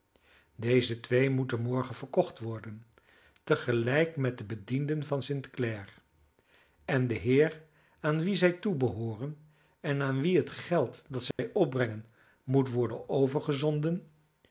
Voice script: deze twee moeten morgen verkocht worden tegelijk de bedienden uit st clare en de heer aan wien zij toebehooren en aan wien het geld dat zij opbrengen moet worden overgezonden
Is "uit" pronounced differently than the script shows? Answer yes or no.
yes